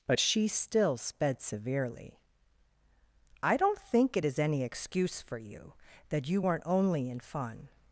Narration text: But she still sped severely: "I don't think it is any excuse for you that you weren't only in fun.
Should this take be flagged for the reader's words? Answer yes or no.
no